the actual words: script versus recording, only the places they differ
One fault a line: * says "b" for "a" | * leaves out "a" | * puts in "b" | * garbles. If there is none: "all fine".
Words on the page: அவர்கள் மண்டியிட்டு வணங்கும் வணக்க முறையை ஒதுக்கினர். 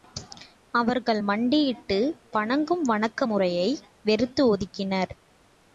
* puts in "வெறுத்து"